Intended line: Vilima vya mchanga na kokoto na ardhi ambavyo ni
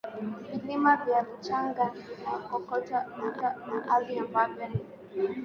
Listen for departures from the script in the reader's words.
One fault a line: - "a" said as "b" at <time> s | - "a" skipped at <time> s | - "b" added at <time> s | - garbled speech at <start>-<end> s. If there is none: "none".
- "na" added at 3.4 s